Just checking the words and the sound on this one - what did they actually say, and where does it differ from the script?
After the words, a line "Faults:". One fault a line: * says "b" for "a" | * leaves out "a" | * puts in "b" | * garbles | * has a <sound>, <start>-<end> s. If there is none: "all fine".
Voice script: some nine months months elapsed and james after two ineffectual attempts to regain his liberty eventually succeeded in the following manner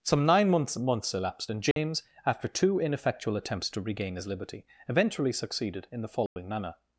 some nine months months elapsed and james after two ineffectual attempts to regain his liberty eventually succeeded in the following manner
Faults:
* has a dropout, 1.7-1.8 s
* has a dropout, 6.3-6.4 s